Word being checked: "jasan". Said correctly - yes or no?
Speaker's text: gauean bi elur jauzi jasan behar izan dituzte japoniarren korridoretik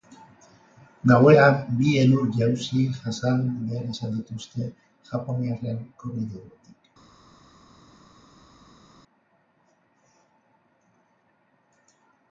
yes